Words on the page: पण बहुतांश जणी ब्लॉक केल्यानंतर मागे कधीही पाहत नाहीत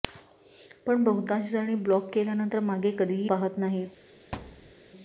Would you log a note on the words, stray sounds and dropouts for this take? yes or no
yes